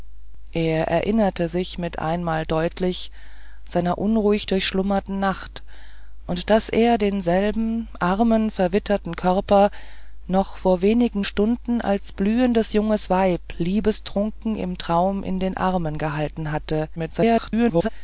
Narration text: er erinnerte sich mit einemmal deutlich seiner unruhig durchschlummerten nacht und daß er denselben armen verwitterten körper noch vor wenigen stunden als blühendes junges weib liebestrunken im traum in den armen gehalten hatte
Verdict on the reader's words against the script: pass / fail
fail